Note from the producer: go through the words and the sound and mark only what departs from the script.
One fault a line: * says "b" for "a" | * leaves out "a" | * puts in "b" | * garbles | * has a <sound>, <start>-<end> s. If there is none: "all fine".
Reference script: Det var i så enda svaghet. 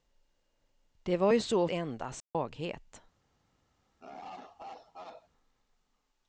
* has a dropout, 2.2-2.3 s
* has a laugh, 4.0-5.3 s